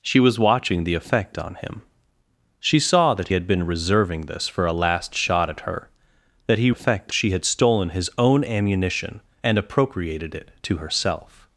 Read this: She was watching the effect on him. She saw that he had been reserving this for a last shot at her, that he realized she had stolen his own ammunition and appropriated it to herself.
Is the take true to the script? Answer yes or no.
no